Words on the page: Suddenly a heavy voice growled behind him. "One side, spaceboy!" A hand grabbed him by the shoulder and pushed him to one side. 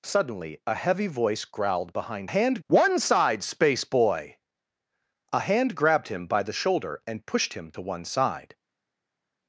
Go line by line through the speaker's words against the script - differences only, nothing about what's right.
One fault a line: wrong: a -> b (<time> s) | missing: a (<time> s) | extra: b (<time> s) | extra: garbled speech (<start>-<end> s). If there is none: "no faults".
wrong: him -> hand (2.2 s)